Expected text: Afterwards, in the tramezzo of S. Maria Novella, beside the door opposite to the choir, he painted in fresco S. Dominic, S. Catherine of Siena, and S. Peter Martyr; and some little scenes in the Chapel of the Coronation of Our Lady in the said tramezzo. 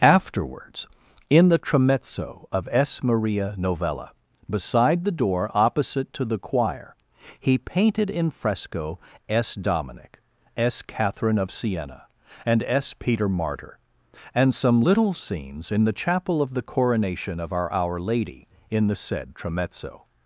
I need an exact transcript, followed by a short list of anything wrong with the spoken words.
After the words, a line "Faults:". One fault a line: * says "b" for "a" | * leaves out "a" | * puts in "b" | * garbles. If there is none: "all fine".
Afterwards, in the tramezzo of S. Maria Novella, beside the door opposite to the choir, he painted in fresco S. Dominic, S. Catherine of Siena, and S. Peter Martyr; and some little scenes in the Chapel of the Coronation of Our Our Lady in the said tramezzo.
Faults:
* puts in "Our"